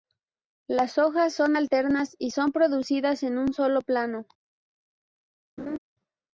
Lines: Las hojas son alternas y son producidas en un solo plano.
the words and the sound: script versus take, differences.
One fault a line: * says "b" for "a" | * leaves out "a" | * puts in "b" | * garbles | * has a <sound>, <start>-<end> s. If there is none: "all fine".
* has a laugh, 5.6-5.8 s